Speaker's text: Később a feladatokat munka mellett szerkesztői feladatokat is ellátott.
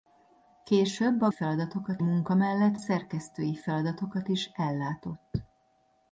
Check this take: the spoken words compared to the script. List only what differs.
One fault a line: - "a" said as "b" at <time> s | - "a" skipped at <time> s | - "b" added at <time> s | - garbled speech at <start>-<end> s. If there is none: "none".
none